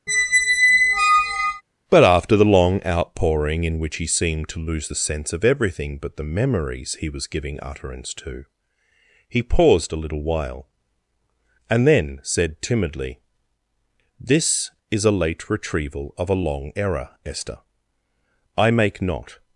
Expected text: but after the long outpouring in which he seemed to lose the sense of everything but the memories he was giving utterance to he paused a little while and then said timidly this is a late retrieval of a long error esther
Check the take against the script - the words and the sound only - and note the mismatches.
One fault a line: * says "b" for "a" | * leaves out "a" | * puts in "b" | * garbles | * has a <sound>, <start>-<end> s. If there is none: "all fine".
* has a squeak, 0.1-1.6 s
* puts in "i make not"